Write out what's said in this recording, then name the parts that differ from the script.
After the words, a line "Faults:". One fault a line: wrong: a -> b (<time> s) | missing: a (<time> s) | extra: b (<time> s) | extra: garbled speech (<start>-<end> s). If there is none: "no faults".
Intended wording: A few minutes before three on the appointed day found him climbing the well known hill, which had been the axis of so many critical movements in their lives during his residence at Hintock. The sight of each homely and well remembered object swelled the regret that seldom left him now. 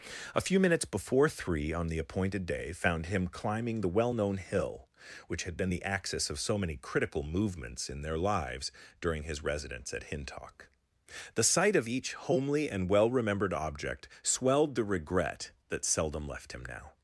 A few minutes before three on the appointed day found him climbing the well known hill, which had been the axis of so many critical movements in their lives during his residence at Hintock. The sight of each homely and well remembered object swelled the regret that seldom left him now.
Faults:
no faults